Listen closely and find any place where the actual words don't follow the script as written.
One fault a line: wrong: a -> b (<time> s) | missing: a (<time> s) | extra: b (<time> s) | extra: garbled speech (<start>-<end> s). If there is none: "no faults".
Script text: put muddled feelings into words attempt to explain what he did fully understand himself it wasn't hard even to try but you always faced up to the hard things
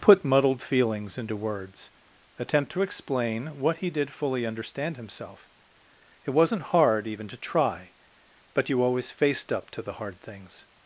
no faults